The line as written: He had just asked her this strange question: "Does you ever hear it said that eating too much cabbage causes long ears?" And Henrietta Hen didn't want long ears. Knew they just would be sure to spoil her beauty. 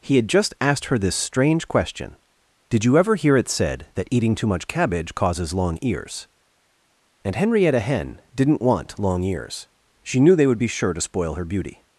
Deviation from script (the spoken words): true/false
true